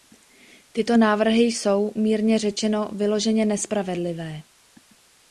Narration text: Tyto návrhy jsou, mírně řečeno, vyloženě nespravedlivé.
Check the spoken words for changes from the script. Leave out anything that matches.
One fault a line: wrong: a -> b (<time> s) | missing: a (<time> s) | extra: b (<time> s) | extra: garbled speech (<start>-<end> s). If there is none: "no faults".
no faults